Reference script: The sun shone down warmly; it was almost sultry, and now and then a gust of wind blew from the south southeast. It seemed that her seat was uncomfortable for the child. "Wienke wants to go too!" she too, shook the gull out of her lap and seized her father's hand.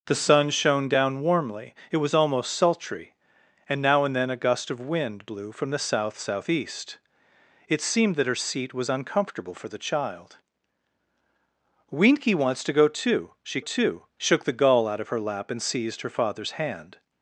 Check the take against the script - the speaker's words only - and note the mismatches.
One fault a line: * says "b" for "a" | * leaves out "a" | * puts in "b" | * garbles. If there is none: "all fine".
all fine